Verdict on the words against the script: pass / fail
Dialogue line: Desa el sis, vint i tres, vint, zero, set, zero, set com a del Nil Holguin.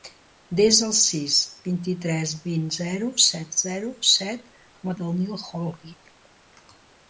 pass